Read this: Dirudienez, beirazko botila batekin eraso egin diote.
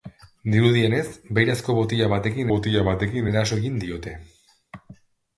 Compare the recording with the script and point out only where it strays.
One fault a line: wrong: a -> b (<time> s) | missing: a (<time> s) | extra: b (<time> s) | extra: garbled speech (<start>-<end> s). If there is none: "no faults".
extra: botila batekin (2.5 s)